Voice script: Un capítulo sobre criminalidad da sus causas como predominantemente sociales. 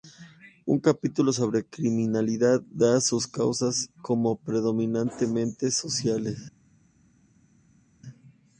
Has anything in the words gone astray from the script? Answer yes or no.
no